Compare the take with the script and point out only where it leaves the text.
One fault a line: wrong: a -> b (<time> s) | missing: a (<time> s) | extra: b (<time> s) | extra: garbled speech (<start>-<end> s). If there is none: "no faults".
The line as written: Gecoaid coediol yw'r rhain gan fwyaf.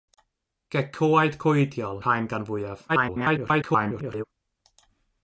missing: yw'r (2.0 s)
extra: garbled speech (2.9-4.2 s)